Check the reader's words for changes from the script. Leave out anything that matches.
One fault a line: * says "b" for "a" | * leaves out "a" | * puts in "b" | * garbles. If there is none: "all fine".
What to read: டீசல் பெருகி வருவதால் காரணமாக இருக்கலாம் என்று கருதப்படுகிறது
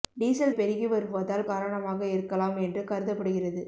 all fine